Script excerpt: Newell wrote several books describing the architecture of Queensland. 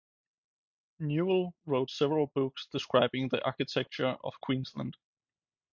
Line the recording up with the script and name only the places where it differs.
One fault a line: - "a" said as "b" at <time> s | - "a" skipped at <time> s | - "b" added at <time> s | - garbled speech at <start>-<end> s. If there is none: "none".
none